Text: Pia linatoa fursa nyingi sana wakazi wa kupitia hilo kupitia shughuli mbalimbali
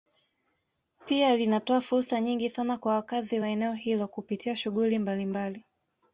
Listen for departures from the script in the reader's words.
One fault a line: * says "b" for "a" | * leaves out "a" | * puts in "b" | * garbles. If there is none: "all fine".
* puts in "kwa"
* says "eneo" for "kupitia"